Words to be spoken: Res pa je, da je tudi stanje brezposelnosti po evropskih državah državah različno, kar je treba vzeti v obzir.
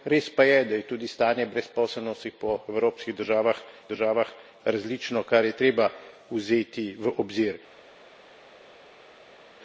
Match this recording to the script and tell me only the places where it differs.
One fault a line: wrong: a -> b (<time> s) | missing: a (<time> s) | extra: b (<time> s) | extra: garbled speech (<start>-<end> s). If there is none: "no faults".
no faults